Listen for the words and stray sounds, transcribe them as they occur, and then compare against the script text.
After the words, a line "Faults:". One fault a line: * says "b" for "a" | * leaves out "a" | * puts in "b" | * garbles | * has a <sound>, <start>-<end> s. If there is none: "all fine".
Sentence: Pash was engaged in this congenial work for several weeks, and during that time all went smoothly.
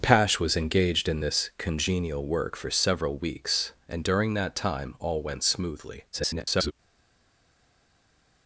Pash was engaged in this congenial work for several weeks, and during that time all went smoothly. [garbled]
Faults:
* garbles